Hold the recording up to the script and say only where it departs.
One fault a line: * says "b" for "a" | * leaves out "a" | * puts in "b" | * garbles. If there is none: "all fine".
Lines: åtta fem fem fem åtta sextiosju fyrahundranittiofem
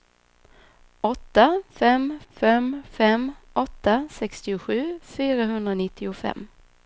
all fine